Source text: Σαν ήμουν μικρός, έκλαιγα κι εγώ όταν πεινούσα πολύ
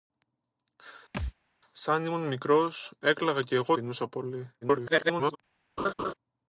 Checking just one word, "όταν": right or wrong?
wrong